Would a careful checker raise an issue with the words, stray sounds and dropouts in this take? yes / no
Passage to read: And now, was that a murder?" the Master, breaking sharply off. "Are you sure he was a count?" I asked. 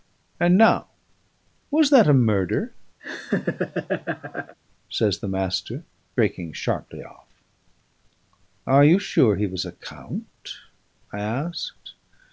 yes